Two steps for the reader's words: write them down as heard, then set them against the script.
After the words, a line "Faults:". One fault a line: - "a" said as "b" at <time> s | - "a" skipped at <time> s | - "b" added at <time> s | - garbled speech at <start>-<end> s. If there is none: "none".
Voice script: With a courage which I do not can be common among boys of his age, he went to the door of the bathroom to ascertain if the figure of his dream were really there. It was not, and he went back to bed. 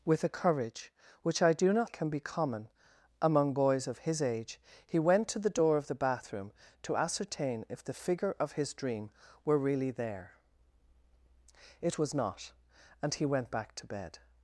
With a courage which I do not can be common among boys of his age, he went to the door of the bathroom to ascertain if the figure of his dream were really there. It was not, and he went back to bed.
Faults:
none